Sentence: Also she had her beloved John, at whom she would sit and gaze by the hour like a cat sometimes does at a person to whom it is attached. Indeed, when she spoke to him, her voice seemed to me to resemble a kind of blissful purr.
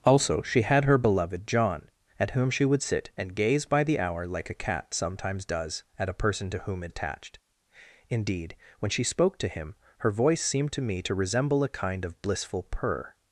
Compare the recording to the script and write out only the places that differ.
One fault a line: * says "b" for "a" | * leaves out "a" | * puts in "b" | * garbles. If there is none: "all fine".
* leaves out "is"